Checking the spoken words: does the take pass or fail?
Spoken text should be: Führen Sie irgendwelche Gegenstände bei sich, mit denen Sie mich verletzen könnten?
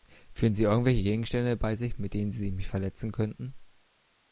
pass